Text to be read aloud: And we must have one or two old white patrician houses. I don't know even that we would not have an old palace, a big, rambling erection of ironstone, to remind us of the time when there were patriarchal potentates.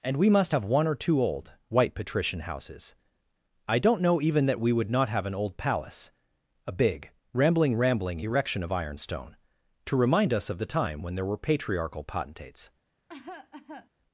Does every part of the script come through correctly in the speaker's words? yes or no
no